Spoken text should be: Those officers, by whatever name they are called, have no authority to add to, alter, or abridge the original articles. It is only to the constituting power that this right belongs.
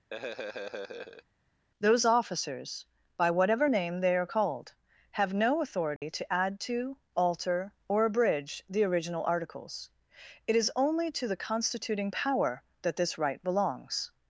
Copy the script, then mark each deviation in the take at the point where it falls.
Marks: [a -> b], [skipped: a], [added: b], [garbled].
Those officers, by whatever name they are called, have no authority to add to, alter, or abridge the original articles. It is only to the constituting power that this right belongs.